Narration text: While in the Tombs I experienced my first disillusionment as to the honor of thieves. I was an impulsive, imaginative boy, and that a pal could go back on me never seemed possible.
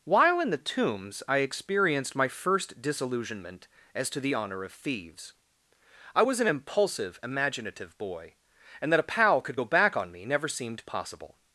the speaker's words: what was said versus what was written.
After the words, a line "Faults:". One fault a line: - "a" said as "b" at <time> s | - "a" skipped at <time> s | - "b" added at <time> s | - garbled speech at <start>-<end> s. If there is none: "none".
While in the Tombs I experienced my first disillusionment as to the honor of thieves. I was an impulsive, imaginative boy, and that a pal could go back on me never seemed possible.
Faults:
none